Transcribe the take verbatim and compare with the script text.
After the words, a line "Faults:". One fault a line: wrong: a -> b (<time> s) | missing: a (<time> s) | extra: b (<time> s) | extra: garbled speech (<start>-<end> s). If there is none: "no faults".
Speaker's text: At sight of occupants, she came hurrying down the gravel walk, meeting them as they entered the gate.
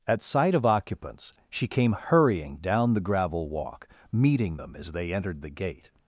At sight of occupants, she came hurrying down the gravel walk, meeting them as they entered the gate.
Faults:
no faults